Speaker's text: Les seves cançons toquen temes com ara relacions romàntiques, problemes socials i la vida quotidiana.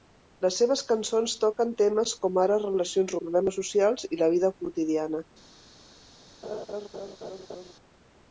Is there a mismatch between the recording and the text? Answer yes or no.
yes